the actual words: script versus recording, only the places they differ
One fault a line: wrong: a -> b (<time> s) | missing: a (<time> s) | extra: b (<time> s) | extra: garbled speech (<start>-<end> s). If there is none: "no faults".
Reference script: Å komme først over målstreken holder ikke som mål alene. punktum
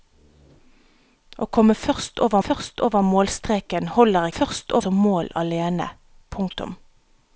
extra: først over (2.4 s)
wrong: ikke -> først (4.3 s)